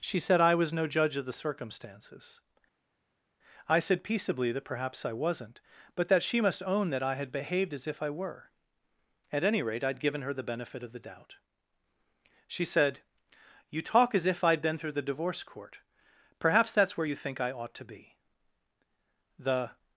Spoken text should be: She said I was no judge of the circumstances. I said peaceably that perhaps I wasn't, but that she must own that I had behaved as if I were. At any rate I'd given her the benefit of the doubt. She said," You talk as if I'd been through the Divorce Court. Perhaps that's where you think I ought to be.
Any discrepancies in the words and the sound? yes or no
yes